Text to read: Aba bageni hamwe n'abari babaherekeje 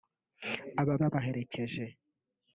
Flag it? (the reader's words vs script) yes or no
yes